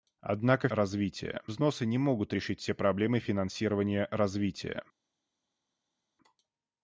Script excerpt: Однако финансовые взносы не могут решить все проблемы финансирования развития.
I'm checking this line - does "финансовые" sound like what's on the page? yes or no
no